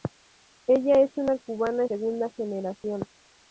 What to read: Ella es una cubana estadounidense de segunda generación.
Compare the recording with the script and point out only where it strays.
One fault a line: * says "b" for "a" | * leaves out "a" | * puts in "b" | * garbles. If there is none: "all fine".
* leaves out "estadounidense de"